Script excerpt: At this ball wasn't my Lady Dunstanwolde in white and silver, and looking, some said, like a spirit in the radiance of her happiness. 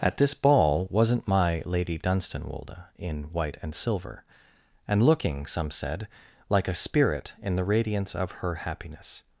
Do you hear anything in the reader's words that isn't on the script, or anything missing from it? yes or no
no